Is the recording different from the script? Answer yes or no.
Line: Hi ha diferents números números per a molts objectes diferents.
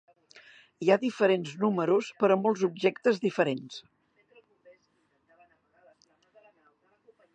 yes